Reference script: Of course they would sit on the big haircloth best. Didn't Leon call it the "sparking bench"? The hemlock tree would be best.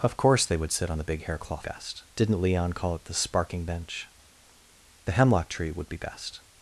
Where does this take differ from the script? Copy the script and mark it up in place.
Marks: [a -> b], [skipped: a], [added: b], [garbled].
Of course they would sit on the big haircloth best. Didn't Leon call it the "sparking bench"? The hemlock tree would be best.